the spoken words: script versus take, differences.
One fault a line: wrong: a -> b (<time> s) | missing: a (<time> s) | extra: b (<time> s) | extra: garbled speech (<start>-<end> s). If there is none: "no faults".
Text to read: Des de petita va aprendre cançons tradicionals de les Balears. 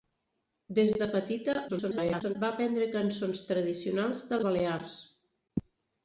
extra: garbled speech (1.7-2.4 s)
missing: les (4.4 s)